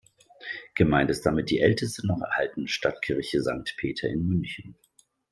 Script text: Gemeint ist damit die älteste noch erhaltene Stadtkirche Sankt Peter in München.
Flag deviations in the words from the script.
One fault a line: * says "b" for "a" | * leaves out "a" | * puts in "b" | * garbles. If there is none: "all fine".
all fine